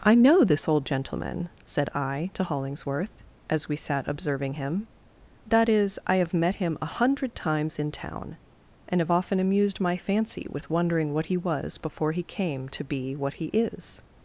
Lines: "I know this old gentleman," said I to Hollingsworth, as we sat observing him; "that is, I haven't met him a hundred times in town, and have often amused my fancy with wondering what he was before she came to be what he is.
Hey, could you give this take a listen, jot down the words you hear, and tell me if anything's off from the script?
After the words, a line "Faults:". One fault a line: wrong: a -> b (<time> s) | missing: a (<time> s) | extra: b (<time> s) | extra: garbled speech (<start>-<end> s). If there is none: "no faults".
"I know this old gentleman," said I to Hollingsworth, as we sat observing him; "that is, I have met him a hundred times in town, and have often amused my fancy with wondering what he was before he came to be what he is.
Faults:
wrong: haven't -> have (6.2 s)
wrong: she -> he (12.1 s)